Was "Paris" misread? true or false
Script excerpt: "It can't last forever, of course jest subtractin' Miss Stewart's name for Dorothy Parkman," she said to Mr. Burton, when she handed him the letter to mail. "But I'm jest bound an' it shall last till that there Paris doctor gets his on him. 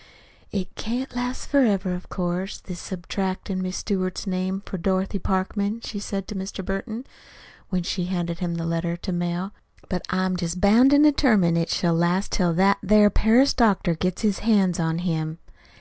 false